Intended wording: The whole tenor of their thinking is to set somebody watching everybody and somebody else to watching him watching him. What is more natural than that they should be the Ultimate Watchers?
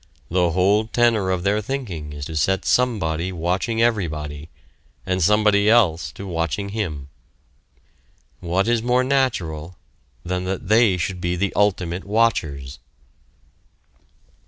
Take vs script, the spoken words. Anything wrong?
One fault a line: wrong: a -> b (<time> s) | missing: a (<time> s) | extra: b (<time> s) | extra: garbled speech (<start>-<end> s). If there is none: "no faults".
missing: watching him (7.1 s)